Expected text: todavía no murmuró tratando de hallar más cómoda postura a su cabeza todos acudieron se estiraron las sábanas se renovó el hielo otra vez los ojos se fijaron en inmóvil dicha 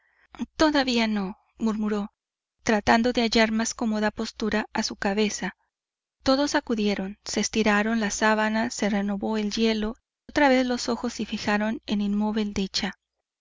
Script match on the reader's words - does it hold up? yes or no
yes